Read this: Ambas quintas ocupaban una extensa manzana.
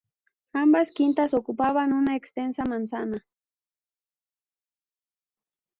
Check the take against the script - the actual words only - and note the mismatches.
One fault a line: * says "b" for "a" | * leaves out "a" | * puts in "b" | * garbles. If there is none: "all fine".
all fine